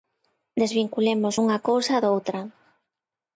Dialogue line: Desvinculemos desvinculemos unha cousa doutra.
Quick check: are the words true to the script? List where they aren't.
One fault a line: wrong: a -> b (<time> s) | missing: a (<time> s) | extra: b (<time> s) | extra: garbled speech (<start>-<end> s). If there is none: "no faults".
missing: desvinculemos (1.4 s)